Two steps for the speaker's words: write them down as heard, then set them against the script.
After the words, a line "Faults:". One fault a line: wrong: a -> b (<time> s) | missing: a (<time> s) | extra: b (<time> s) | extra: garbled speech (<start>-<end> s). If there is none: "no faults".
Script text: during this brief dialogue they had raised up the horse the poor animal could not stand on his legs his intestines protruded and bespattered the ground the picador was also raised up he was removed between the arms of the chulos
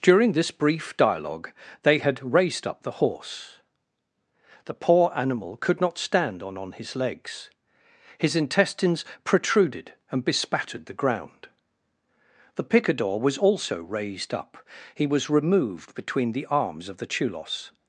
during this brief dialogue they had raised up the horse the poor animal could not stand on on his legs his intestines protruded and bespattered the ground the picador was also raised up he was removed between the arms of the chulos
Faults:
extra: on (6.6 s)